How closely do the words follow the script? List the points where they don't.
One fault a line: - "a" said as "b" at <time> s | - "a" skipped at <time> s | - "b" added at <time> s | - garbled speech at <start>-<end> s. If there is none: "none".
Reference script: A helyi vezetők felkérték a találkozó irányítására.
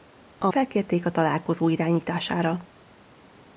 - "helyi vezetők" skipped at 0.5 s